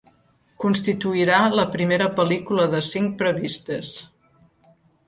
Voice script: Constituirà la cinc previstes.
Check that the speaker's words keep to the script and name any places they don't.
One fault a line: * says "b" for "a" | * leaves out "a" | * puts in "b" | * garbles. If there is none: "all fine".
* puts in "primera pel·lícula de"